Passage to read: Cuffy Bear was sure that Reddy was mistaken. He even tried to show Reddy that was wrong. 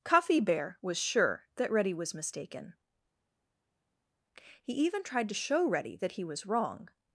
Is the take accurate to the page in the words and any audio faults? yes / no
no